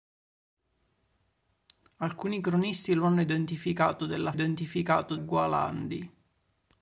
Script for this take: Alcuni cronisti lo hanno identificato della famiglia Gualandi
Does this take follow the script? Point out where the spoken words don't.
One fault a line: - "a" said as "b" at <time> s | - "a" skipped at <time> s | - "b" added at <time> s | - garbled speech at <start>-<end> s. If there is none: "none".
- "famiglia" said as "identificato" at 4.3 s